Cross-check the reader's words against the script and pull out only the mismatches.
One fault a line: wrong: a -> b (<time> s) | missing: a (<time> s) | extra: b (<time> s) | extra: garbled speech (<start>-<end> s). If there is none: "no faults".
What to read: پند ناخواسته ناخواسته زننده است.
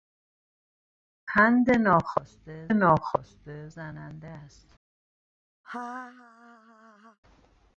no faults